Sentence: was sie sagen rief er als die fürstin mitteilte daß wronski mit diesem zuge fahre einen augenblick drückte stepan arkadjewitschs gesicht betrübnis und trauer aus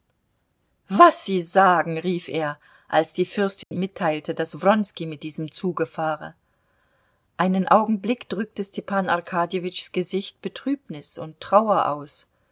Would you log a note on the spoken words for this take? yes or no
no